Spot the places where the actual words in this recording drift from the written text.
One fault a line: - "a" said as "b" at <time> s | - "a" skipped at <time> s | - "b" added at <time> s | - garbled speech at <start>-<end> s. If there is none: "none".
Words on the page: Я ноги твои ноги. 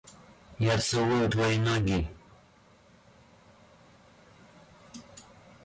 - "ноги" said as "целую" at 0.8 s